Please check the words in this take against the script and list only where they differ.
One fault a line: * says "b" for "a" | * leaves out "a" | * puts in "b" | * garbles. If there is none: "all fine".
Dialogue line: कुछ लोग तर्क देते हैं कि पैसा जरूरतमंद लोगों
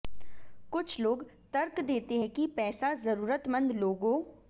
all fine